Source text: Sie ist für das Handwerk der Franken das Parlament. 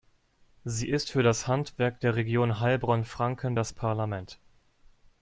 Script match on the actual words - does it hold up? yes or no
no